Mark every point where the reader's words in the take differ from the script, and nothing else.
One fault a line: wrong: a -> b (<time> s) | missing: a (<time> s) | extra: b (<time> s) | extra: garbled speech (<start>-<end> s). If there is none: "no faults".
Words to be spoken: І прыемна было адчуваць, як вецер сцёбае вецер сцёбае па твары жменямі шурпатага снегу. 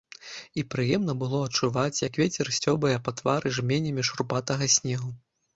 missing: вецер сцёбае (2.9 s)